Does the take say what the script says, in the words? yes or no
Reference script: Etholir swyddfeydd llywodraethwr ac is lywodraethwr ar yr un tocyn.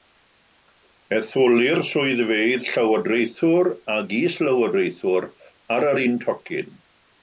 yes